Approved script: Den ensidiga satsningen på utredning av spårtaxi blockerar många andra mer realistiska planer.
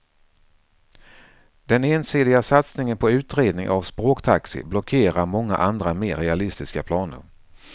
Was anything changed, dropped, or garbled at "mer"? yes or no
no